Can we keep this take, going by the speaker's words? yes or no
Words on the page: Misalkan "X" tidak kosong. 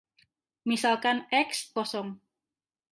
no